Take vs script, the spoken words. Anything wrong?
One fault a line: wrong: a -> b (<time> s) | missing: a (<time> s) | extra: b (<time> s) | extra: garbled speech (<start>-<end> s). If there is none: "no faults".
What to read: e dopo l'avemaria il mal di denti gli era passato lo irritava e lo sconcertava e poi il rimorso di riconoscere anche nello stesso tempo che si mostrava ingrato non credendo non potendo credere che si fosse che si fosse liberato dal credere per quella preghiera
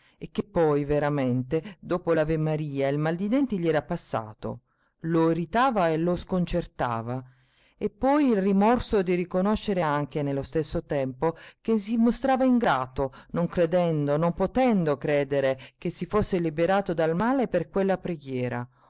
extra: che poi veramente (0.3 s)
missing: che si fosse (16.4 s)
wrong: credere -> male (17.1 s)